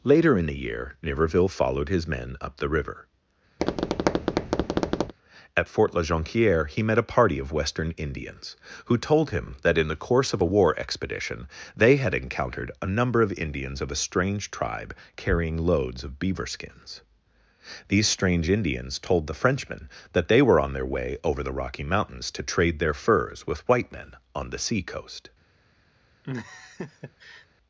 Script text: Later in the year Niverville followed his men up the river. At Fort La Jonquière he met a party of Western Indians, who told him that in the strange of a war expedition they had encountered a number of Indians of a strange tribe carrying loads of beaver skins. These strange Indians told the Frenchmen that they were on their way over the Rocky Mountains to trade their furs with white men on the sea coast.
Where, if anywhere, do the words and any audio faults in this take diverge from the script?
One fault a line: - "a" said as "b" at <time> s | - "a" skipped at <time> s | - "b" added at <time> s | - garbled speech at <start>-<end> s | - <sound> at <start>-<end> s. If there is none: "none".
- tap at 3.6-5.1 s
- "strange" said as "course" at 10.0 s
- laugh at 26.2-27.5 s